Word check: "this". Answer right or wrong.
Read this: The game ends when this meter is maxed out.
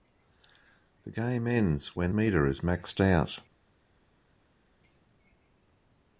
wrong